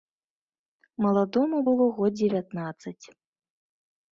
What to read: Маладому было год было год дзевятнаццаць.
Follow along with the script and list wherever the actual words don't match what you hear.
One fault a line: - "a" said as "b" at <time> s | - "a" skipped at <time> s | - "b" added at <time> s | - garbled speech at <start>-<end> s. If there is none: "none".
- "было год" skipped at 2.1 s